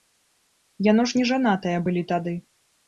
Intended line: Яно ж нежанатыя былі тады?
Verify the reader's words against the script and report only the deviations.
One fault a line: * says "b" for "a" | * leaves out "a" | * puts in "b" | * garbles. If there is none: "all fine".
all fine